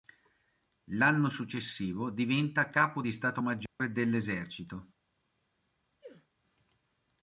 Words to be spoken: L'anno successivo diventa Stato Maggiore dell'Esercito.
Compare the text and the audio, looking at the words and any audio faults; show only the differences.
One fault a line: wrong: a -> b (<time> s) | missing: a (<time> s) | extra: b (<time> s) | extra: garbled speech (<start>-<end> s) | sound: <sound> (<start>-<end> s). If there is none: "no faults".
extra: Capo di (2.7 s)
sound: dropout (3.7-3.8 s)
sound: sneeze (6.0-6.3 s)